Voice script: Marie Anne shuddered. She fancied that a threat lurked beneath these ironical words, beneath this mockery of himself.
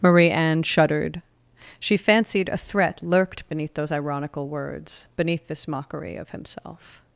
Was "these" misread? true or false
true